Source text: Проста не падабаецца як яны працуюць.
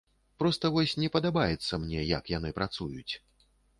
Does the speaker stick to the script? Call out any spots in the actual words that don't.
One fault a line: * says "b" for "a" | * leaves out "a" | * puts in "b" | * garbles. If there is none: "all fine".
* puts in "вось"
* puts in "мне"